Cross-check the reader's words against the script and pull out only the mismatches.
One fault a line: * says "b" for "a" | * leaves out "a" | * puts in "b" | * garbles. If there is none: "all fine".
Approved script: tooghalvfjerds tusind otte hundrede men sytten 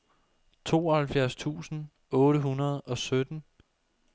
* says "og" for "men"